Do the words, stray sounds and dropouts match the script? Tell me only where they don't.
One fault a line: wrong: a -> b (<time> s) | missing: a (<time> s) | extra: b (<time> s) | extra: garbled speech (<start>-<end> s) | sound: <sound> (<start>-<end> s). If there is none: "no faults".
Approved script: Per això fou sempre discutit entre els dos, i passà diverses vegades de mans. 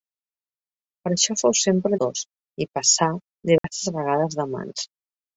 missing: discutit entre els (2.0 s)
sound: dropout (3.6-3.6 s)